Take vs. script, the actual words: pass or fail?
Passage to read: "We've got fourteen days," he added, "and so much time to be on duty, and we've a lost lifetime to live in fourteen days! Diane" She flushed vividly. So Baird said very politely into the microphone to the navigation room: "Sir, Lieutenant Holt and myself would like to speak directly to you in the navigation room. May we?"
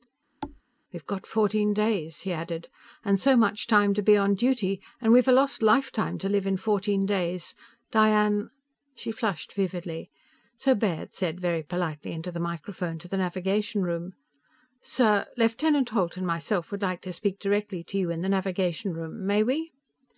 pass